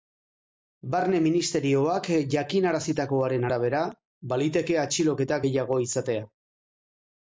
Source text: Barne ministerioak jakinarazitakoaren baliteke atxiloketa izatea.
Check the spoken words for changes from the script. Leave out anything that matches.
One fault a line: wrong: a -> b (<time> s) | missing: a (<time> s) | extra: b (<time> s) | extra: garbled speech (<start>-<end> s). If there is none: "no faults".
extra: arabera (3.5 s)
extra: gehiago (5.5 s)